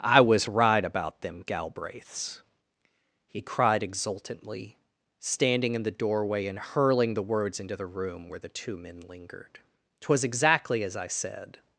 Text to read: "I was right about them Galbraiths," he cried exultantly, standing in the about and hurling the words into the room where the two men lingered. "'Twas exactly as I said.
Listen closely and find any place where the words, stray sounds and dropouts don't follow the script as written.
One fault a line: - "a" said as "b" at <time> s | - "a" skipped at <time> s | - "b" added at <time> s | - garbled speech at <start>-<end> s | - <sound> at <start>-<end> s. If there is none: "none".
- "about" said as "doorway" at 5.9 s